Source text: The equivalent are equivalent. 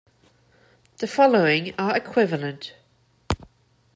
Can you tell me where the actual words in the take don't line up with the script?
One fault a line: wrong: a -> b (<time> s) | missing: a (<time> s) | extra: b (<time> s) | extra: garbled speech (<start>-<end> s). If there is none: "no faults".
wrong: equivalent -> following (1.1 s)